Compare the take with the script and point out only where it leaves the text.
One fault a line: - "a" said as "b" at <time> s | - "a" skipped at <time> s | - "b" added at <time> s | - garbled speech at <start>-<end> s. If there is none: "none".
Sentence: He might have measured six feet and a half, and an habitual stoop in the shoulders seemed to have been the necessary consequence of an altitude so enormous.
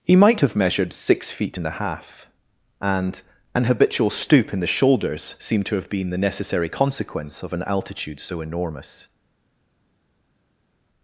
none